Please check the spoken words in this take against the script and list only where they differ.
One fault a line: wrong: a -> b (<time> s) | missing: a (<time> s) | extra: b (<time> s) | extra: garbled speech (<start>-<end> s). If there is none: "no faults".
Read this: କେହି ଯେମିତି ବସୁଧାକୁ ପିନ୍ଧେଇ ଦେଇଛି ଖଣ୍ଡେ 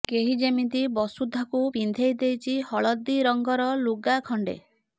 extra: ହଳଦୀ ରଙ୍ଗର ଲୁଗା (2.7 s)